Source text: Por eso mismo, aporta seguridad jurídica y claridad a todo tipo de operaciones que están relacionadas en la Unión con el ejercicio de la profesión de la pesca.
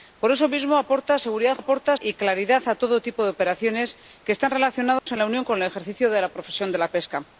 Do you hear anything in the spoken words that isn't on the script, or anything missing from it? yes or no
yes